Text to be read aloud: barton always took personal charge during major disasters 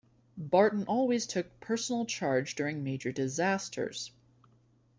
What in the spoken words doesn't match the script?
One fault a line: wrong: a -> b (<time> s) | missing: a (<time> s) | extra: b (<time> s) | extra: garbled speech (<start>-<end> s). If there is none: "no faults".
no faults